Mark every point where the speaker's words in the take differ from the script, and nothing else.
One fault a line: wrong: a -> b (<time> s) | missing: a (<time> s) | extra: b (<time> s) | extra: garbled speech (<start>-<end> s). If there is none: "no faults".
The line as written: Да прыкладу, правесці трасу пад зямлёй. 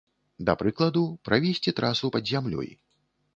no faults